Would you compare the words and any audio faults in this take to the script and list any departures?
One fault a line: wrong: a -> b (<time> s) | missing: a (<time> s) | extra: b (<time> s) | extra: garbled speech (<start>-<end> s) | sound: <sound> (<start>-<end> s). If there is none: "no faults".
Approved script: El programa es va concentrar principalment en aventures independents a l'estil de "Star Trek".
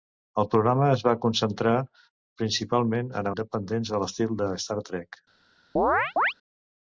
missing: aventures (3.3 s)
sound: chirp (5.8-6.3 s)